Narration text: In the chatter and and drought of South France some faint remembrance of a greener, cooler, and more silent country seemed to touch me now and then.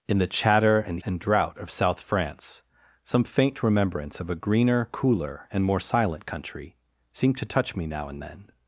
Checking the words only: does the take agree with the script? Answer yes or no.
yes